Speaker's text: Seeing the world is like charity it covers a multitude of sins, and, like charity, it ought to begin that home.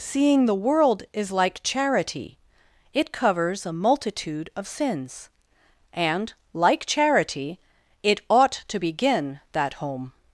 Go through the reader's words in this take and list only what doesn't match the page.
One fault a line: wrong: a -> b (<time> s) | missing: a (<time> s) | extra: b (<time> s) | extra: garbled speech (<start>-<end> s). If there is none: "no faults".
no faults